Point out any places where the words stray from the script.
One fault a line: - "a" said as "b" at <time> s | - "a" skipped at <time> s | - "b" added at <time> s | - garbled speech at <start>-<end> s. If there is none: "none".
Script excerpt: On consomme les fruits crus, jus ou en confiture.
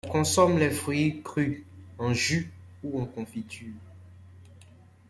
- "en" added at 2.0 s